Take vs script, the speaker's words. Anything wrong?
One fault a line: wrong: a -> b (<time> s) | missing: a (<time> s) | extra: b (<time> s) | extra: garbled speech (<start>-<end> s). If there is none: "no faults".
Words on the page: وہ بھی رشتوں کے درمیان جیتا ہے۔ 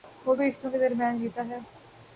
no faults